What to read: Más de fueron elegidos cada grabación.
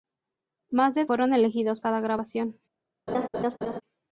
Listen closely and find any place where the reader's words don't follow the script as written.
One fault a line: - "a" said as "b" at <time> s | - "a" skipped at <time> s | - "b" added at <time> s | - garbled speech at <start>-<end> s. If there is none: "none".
none